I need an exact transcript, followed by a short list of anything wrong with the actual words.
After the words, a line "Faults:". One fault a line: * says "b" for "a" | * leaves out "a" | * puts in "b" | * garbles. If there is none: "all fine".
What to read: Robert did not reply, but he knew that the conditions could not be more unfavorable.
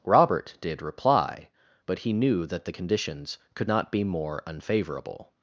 Robert did reply, but he knew that the conditions could not be more unfavorable.
Faults:
* leaves out "not"